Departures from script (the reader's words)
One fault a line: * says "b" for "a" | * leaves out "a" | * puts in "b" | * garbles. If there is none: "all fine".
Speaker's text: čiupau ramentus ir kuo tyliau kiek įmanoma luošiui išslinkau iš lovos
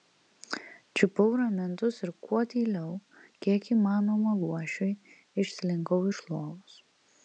all fine